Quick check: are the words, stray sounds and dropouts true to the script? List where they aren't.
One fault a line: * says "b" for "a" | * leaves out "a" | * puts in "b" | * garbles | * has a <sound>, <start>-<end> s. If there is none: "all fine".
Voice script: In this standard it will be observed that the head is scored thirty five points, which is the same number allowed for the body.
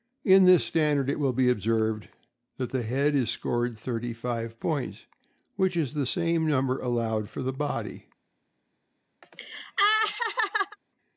* has a laugh, 9.2-10.8 s